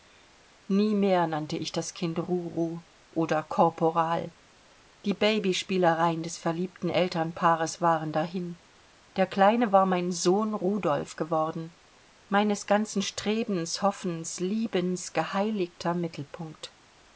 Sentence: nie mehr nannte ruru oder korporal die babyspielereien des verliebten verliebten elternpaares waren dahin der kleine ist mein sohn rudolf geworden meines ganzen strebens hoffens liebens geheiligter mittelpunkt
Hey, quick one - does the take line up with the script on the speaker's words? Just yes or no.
no